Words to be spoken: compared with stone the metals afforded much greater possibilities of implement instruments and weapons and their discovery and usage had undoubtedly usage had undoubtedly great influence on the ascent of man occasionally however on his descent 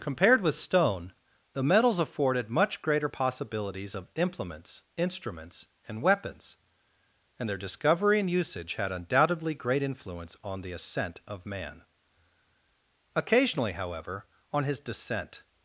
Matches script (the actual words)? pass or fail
fail